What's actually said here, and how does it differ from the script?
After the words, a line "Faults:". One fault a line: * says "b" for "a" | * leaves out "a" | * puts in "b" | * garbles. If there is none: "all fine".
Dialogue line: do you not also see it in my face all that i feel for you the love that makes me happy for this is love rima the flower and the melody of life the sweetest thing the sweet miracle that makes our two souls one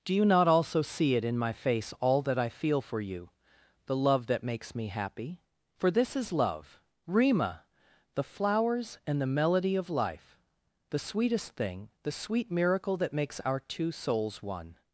do you not also see it in my face all that i feel for you the love that makes me happy for this is love rima the flowers and the melody of life the sweetest thing the sweet miracle that makes our two souls one
Faults:
* says "flowers" for "flower"